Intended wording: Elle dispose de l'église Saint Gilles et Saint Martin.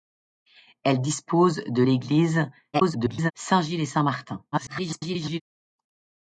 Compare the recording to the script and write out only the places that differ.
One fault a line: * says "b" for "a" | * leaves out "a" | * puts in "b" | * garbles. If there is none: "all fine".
* garbles
* garbles